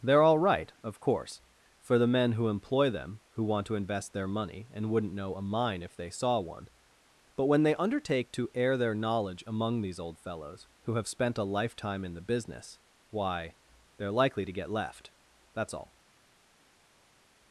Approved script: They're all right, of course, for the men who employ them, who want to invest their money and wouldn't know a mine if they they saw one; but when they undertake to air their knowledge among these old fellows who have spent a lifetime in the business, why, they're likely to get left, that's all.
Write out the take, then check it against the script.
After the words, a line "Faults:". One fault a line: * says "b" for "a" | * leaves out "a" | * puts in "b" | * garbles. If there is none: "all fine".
They're all right, of course, for the men who employ them, who want to invest their money and wouldn't know a mine if they saw one; but when they undertake to air their knowledge among these old fellows who have spent a lifetime in the business, why, they're likely to get left, that's all.
Faults:
* leaves out "they"